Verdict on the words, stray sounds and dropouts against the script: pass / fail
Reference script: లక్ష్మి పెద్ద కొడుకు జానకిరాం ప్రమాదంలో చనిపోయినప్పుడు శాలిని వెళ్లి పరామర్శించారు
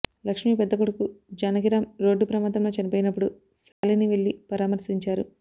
fail